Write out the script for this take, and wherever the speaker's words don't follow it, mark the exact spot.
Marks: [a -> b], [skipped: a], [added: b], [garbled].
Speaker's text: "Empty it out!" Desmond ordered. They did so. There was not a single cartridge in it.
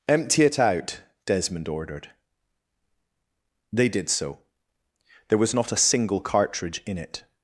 "Empty it out!" Desmond ordered. They did so. There was not a single cartridge in it.